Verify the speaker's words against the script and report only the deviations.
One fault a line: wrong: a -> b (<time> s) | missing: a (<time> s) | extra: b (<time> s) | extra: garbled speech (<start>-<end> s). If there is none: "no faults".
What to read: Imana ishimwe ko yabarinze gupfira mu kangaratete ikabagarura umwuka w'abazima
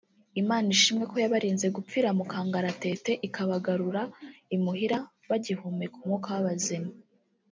extra: imuhira bagihumeka (4.5 s)